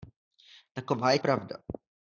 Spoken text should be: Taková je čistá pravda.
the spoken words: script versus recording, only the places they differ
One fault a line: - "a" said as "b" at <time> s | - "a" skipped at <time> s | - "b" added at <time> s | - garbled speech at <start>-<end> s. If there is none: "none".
- "čistá" skipped at 1.2 s